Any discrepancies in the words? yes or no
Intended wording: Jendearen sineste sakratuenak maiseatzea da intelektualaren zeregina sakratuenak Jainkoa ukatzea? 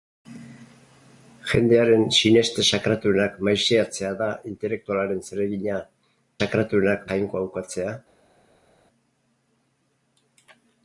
no